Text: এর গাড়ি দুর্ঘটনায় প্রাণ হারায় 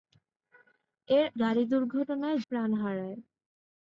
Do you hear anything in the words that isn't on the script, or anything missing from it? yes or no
no